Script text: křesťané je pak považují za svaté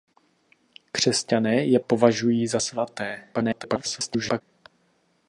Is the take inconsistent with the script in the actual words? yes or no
yes